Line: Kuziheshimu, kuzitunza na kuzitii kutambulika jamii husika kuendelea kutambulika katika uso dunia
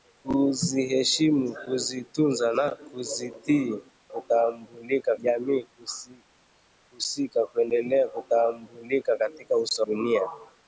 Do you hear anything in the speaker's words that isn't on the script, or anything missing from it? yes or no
no